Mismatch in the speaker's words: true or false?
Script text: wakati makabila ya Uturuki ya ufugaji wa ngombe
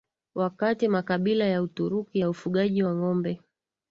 false